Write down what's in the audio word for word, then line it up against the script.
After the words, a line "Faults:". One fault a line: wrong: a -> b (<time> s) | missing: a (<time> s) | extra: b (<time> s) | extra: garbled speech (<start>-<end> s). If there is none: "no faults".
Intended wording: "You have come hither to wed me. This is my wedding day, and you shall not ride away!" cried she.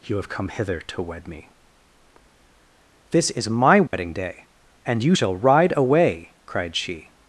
"You have come hither to wed me. This is my wedding day, and you shall ride away!" cried she.
Faults:
missing: not (5.3 s)